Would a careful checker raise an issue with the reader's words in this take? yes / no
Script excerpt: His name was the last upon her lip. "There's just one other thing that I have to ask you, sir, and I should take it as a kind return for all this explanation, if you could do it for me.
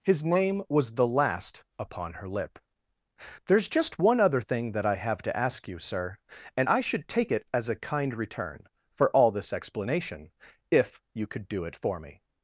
no